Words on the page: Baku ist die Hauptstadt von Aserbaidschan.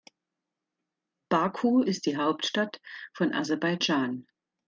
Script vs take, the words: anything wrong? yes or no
no